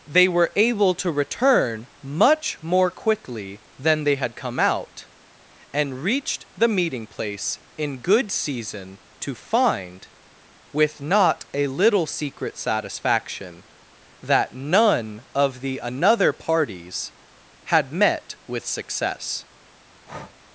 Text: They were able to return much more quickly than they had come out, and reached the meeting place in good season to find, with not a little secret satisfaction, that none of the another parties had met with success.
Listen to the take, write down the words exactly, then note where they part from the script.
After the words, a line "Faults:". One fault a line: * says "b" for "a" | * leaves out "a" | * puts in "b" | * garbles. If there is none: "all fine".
They were able to return much more quickly than they had come out, and reached the meeting place in good season to find, with not a little secret satisfaction, that none of the another parties had met with success.
Faults:
all fine